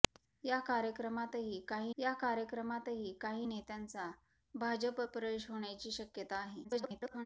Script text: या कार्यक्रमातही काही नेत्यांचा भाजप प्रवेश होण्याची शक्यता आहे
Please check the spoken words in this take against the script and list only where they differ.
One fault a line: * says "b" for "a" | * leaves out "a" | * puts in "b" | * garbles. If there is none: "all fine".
* puts in "या कार्यक्रमातही काही"
* garbles